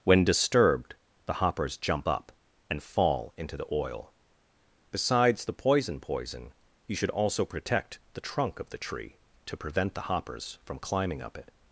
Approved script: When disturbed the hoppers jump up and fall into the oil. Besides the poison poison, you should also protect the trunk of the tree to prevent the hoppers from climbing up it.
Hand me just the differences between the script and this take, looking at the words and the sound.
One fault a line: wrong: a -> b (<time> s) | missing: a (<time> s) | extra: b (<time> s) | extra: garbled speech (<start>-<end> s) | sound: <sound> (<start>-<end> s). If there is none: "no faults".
no faults